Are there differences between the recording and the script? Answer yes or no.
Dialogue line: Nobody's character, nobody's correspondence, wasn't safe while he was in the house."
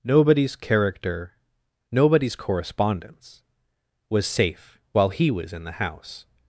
yes